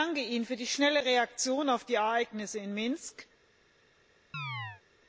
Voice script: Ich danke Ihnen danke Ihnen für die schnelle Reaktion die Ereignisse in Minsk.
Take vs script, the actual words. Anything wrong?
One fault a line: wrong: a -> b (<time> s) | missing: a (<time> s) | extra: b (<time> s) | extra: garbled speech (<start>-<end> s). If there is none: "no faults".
missing: danke Ihnen (0.5 s)
extra: auf (1.7 s)